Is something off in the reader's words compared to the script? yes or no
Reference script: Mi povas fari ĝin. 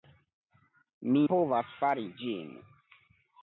no